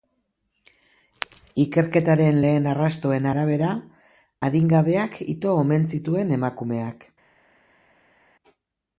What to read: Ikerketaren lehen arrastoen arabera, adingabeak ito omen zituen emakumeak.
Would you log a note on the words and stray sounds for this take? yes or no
no